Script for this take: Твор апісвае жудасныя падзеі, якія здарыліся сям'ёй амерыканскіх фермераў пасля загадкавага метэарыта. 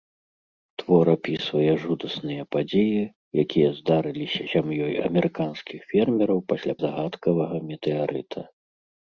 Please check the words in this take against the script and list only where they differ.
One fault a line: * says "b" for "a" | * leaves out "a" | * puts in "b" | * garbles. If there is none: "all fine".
all fine